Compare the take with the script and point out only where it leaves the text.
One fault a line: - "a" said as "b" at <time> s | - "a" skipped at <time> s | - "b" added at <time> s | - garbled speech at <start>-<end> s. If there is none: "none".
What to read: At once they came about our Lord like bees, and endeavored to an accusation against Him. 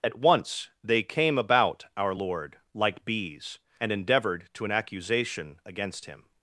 none